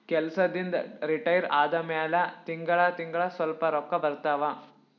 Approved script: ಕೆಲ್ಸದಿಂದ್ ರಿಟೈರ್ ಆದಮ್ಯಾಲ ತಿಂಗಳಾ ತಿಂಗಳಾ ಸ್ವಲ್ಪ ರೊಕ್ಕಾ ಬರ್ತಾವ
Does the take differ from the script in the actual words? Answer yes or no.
no